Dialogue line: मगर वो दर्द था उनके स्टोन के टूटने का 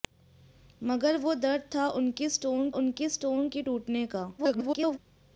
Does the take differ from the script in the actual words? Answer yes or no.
yes